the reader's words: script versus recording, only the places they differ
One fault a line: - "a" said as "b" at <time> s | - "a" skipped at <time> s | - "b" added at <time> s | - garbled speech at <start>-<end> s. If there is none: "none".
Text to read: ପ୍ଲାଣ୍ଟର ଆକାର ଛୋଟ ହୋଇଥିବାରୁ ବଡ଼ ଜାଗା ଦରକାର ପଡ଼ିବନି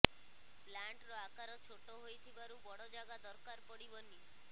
none